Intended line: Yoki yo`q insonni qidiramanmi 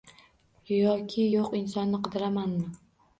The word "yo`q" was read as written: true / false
true